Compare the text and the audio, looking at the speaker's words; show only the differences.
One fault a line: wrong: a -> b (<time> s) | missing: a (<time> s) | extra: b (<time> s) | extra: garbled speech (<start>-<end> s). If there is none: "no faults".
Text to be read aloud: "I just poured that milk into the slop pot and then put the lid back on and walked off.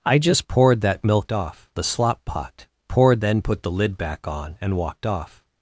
wrong: into -> off (1.3 s)
wrong: and -> poured (2.9 s)